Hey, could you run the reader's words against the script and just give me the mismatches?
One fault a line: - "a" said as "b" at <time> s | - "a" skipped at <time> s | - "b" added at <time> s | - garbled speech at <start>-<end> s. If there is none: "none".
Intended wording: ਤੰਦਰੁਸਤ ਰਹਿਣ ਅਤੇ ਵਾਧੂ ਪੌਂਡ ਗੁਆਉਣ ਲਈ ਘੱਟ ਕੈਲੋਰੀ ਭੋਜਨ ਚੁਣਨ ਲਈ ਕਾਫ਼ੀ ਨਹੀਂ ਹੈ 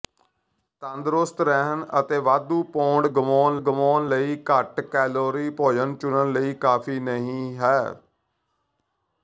- "ਗੁਆਉਣ" added at 3.6 s